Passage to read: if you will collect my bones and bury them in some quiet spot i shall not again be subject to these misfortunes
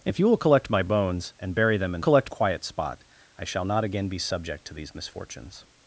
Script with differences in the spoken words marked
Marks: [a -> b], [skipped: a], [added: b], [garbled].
if you will collect my bones and bury them in [some -> collect] quiet spot i shall not again be subject to these misfortunes